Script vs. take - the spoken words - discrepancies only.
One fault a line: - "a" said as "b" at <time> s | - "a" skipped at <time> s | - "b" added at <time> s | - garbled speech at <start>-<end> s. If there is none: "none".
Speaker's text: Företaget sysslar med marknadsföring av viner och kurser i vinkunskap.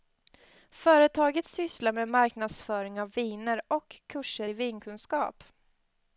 none